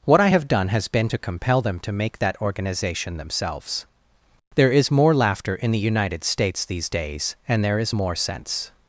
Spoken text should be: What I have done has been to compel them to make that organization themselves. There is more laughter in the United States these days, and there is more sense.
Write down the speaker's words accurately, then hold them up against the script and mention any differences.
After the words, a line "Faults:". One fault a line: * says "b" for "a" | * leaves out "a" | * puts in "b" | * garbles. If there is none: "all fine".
What I have done has been to compel them to make that organization themselves. There is more laughter in the United States these days, and there is more sense.
Faults:
all fine